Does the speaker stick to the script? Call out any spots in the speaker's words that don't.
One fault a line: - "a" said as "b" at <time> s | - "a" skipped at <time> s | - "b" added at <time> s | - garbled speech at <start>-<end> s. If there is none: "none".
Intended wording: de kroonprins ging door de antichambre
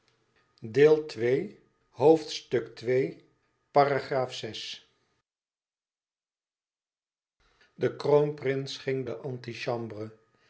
- "door" skipped at 9.1 s